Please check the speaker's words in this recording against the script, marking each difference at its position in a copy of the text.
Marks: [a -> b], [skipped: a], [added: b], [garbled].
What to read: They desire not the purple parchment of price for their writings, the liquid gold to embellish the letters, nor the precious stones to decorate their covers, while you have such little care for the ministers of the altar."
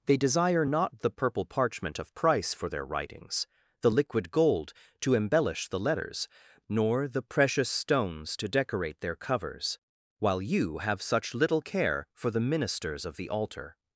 They desire not the purple parchment of price for their writings, the liquid gold to embellish the letters, nor the precious stones to decorate their covers, while you have such little care for the ministers of the altar."